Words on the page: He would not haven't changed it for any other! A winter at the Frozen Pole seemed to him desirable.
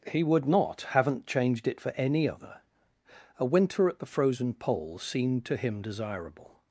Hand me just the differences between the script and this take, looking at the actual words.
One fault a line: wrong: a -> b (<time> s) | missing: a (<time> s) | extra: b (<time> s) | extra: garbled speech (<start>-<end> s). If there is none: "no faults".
no faults